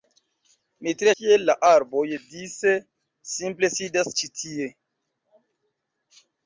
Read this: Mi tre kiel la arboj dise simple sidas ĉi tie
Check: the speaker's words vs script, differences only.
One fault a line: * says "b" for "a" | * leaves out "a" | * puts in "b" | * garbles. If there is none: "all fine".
all fine